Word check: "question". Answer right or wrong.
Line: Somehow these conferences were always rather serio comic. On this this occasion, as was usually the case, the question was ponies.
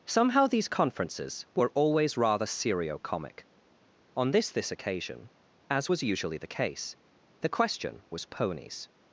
right